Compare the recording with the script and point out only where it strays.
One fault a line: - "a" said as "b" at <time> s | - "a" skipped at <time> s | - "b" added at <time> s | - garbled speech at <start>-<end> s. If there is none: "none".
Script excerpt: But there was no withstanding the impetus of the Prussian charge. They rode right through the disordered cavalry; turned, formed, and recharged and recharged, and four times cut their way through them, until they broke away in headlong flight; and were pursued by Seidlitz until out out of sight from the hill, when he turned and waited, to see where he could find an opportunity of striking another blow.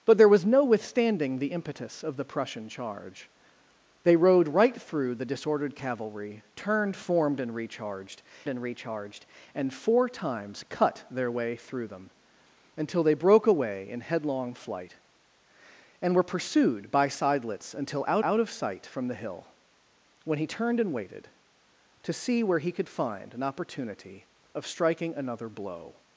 none